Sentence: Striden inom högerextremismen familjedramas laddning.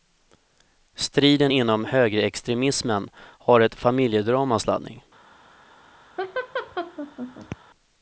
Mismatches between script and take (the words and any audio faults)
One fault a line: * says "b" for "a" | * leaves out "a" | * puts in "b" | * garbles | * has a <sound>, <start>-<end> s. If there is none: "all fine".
* puts in "har ett"
* has a laugh, 6.2-7.6 s